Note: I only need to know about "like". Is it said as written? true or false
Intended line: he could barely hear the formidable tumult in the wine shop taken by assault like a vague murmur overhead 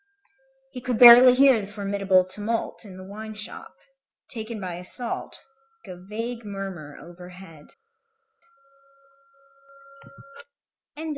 false